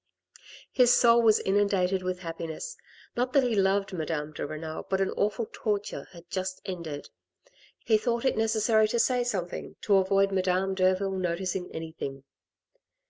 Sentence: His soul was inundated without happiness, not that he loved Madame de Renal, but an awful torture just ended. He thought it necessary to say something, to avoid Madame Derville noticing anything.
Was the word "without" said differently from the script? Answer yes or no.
yes